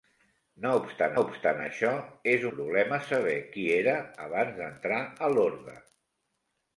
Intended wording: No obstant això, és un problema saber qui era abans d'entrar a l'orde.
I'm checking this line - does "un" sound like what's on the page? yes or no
no